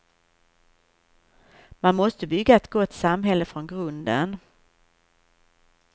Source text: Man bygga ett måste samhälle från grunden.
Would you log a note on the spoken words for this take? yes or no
yes